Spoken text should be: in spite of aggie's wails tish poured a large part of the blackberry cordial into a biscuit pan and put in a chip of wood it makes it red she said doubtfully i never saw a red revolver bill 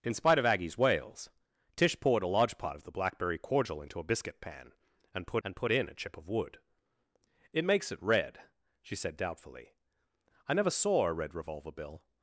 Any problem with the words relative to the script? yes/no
yes